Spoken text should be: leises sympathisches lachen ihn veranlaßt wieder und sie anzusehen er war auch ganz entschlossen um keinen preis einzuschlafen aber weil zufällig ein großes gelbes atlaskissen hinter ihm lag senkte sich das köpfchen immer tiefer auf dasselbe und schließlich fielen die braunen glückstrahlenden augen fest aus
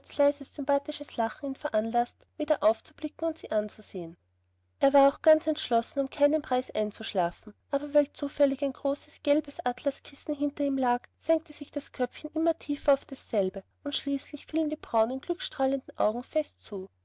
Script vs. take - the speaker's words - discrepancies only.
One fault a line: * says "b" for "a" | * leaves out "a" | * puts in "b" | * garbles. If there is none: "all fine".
* puts in "aufzublicken"
* says "zu" for "aus"